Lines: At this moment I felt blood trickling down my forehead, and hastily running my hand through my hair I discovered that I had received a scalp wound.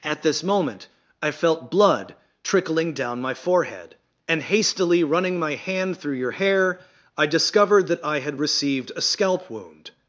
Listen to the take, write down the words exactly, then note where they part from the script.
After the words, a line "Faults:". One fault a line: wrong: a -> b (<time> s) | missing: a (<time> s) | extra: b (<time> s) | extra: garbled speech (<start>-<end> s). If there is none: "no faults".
At this moment I felt blood trickling down my forehead, and hastily running my hand through your hair I discovered that I had received a scalp wound.
Faults:
wrong: my -> your (6.2 s)